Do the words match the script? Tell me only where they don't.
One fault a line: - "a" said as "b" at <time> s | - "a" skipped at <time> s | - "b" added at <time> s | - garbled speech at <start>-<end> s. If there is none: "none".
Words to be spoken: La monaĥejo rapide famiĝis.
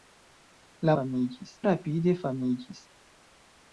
- "monaĥejo" said as "famiĝis" at 0.9 s